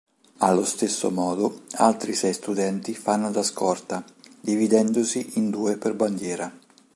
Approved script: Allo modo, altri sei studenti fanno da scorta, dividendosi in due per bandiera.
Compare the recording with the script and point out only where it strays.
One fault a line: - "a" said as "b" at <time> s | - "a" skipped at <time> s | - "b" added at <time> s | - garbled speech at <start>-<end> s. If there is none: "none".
- "stesso" added at 0.7 s